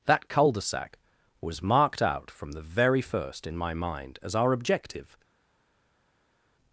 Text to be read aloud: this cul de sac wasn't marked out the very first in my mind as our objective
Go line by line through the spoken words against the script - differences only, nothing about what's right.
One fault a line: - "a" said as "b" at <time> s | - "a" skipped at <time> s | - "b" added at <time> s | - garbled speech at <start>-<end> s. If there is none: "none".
- "this" said as "that" at 0.1 s
- "wasn't" said as "was" at 1.4 s
- "from" added at 2.3 s